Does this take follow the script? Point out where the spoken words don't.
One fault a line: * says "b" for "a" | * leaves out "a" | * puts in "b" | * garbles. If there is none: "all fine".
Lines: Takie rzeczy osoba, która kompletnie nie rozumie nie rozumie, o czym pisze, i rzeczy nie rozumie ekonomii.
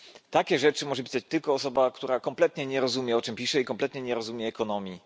* puts in "może pisać tylko"
* leaves out "nie rozumie"
* says "kompletnie" for "rzeczy"